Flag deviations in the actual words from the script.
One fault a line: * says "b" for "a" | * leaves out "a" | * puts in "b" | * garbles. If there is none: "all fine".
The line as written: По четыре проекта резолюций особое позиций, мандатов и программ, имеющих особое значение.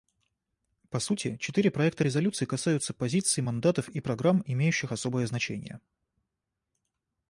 * puts in "сути"
* says "касаются" for "особое"